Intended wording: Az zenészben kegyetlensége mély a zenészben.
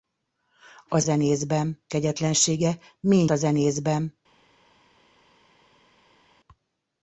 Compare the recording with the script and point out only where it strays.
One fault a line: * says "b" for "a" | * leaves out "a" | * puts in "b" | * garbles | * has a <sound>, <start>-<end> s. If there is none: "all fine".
all fine